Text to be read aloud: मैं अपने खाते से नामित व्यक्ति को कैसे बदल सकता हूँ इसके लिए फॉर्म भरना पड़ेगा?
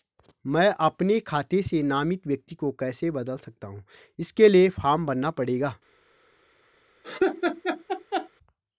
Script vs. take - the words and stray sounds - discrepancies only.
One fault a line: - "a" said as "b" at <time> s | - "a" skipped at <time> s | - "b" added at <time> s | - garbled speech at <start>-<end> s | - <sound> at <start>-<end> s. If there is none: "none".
- laugh at 7.0-8.3 s